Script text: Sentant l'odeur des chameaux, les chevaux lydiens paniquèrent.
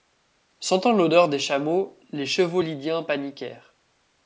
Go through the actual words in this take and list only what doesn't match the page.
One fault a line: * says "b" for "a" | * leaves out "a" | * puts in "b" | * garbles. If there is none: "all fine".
all fine